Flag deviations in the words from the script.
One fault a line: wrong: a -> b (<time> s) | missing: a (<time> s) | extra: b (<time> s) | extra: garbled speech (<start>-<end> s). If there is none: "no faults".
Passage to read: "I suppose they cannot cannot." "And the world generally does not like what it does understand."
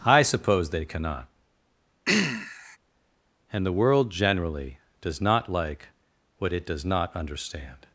missing: cannot (1.3 s)
extra: not (6.8 s)